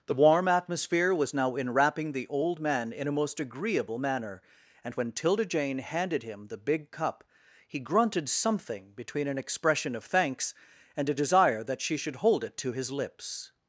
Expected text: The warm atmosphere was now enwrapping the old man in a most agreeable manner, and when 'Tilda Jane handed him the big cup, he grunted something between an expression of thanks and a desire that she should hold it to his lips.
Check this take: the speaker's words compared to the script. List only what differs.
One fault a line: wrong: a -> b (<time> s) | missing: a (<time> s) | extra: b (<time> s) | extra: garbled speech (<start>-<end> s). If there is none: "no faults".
no faults